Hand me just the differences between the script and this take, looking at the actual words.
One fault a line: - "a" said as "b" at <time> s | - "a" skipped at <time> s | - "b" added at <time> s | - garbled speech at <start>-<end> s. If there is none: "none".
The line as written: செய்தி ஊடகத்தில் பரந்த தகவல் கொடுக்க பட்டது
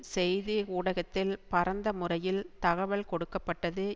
- "முறையில்" added at 1.9 s